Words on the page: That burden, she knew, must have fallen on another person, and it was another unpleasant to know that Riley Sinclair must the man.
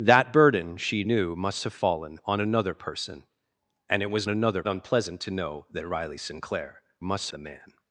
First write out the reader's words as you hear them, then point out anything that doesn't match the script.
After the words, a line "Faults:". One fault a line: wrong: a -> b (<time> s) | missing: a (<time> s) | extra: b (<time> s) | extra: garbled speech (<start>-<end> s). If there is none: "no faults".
That burden, she knew, must have fallen on another person, and it was another unpleasant to know that Riley Sinclair must the man.
Faults:
no faults